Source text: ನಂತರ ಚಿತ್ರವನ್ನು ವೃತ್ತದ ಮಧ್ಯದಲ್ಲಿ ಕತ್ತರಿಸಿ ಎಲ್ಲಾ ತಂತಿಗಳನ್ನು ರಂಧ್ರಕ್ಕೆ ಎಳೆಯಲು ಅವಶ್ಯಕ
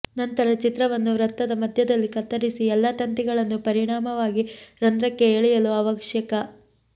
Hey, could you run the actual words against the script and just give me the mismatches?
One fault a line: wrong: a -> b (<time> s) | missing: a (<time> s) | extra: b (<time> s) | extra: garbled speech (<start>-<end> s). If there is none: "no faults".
extra: ಪರಿಣಾಮವಾಗಿ (3.7 s)